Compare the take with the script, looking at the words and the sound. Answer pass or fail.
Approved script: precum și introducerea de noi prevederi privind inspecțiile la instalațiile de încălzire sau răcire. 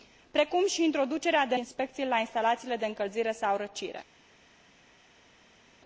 fail